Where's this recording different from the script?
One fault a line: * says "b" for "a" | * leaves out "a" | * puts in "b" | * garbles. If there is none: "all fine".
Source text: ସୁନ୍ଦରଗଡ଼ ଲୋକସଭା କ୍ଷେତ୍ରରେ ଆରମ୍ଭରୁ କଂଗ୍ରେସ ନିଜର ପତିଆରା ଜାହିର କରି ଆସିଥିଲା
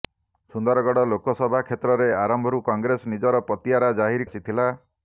* leaves out "କରି"